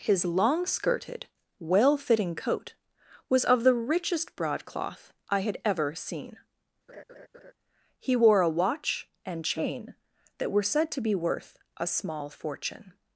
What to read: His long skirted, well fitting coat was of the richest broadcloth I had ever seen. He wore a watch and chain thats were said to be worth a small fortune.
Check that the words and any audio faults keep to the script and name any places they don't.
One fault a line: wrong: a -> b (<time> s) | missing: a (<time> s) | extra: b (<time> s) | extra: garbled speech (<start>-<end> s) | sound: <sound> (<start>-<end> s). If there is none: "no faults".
sound: laugh (6.9-7.5 s)
wrong: thats -> that (10.4 s)